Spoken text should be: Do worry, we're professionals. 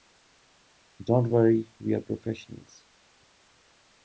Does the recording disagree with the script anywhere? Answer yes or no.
yes